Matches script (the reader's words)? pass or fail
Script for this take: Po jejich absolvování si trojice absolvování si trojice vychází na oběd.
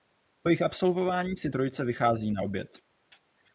fail